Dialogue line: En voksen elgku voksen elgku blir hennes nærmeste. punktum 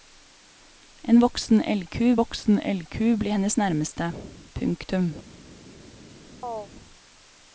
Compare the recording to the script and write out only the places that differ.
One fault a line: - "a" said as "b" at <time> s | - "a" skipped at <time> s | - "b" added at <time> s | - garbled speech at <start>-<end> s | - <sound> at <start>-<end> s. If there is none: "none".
- chirp at 6.4-6.7 s